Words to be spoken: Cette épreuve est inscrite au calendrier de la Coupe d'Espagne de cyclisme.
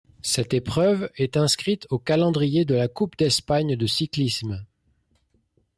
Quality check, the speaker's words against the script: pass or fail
pass